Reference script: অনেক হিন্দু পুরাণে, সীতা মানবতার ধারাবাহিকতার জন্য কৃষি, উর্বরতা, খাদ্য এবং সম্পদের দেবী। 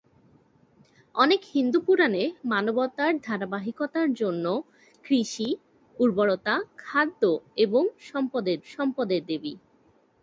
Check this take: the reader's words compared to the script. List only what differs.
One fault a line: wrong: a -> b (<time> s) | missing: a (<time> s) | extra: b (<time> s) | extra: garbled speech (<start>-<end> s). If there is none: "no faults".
missing: সীতা (2.2 s)
extra: সম্পদের (8.7 s)